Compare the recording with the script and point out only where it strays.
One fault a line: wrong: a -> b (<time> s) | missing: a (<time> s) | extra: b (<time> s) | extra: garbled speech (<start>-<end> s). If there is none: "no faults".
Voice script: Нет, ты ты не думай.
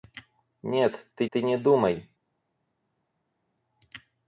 no faults